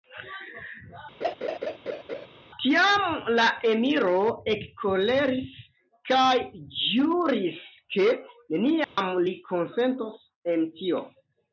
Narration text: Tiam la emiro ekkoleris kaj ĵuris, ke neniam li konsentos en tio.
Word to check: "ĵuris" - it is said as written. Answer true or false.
true